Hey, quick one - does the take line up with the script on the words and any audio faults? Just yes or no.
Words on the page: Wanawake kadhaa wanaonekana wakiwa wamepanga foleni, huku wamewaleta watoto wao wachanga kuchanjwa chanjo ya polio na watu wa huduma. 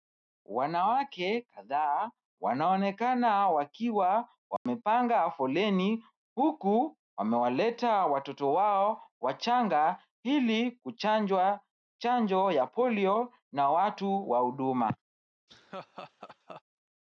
no